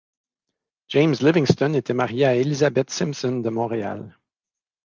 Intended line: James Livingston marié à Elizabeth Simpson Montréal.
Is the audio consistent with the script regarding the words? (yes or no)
no